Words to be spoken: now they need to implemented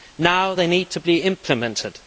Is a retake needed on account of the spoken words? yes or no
yes